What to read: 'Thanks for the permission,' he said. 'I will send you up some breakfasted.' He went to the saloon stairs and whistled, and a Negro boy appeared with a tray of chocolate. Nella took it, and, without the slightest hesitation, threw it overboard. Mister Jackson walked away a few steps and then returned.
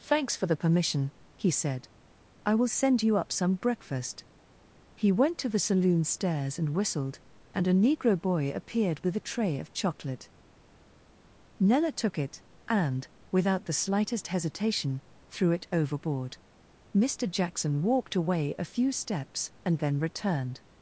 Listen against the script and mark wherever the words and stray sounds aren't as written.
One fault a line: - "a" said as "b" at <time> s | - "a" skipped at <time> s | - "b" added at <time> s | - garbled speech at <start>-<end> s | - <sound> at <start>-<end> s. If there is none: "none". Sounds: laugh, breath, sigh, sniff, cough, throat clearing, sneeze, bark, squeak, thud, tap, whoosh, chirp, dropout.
- "breakfasted" said as "breakfast" at 3.5 s